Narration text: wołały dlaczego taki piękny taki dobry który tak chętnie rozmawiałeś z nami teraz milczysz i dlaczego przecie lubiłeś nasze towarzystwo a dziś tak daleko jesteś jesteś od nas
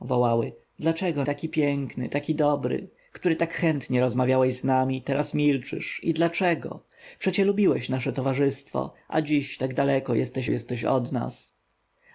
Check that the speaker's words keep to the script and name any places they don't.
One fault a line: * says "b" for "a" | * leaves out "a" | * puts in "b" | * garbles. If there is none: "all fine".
all fine